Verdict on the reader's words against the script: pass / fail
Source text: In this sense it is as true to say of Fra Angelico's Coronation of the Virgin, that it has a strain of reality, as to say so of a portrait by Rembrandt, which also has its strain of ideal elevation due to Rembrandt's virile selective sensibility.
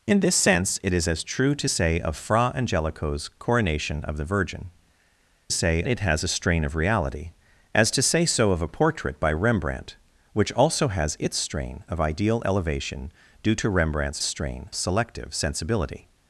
fail